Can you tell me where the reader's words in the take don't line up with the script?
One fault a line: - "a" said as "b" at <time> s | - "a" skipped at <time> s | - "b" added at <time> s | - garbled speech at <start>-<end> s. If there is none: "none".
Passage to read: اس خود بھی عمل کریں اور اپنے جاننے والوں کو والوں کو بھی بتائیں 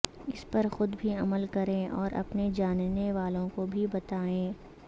- "پر" added at 0.5 s
- "والوں کو" skipped at 3.7 s